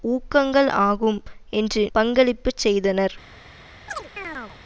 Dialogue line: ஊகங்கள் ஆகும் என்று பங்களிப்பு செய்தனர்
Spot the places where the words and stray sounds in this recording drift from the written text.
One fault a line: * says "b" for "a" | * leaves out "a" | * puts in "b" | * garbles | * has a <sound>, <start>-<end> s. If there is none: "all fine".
* has a chirp, 3.9-4.6 s